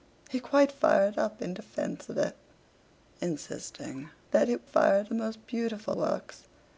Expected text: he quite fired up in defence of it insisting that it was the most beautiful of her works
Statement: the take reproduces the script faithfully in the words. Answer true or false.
false